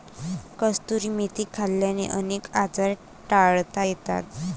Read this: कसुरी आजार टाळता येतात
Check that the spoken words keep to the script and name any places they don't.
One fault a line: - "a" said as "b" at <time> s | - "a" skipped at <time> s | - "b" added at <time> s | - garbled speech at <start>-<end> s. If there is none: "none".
- "मेथी खाल्ल्याने अनेक" added at 1.1 s